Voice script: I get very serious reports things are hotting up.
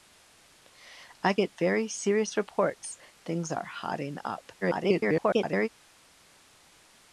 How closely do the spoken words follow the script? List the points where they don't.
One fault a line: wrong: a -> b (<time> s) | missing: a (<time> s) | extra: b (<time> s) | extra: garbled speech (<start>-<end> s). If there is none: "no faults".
extra: garbled speech (4.6-5.7 s)